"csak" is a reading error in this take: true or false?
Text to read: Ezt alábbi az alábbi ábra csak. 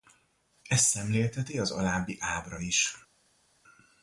true